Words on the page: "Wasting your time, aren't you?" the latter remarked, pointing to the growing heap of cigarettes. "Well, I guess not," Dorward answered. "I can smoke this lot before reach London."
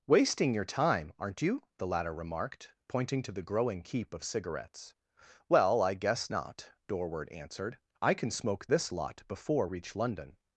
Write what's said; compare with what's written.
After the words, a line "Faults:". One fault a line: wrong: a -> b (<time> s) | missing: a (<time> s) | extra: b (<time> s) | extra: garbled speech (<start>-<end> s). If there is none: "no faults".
"Wasting your time, aren't you?" the latter remarked, pointing to the growing heap of cigarettes. "Well, I guess not," Dorward answered. "I can smoke this lot before reach London."
Faults:
no faults